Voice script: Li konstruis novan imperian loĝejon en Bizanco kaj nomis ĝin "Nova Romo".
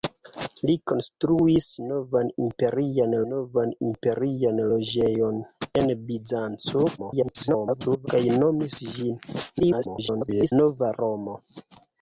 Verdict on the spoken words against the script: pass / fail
fail